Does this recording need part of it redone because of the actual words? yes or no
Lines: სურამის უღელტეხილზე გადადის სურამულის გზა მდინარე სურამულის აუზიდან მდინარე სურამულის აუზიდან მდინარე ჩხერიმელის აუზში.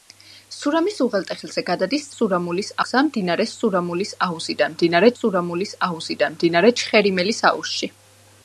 no